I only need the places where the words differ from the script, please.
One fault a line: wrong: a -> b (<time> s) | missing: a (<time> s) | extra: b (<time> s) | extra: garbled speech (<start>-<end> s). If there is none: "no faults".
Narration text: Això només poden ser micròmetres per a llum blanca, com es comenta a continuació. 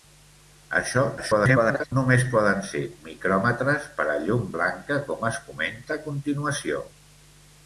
extra: garbled speech (1.2-1.9 s)